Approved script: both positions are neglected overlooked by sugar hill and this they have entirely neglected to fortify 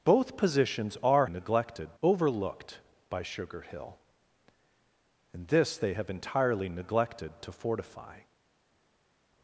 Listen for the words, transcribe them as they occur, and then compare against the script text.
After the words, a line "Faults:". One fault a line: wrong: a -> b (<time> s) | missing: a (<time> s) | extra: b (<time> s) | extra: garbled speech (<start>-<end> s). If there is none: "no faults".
both positions are neglected overlooked by sugar hill and this they have entirely neglected to fortify
Faults:
no faults